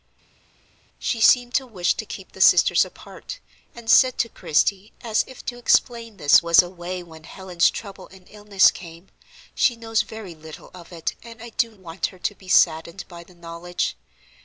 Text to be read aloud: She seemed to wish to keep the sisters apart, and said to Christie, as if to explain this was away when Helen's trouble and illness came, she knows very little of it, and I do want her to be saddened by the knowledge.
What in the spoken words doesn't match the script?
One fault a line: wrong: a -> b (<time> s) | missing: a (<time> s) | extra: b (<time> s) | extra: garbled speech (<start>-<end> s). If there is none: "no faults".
no faults